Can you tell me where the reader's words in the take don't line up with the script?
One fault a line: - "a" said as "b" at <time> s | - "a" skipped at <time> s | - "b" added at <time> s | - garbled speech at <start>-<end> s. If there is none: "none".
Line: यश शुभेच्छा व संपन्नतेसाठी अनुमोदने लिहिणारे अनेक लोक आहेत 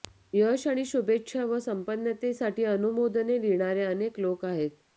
- "आणि" added at 0.7 s